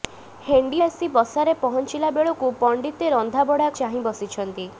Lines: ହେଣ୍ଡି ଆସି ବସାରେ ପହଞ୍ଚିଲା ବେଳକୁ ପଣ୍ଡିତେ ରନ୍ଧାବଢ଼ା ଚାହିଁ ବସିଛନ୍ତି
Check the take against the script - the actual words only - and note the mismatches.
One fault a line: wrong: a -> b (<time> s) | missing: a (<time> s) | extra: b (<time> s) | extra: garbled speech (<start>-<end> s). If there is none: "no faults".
no faults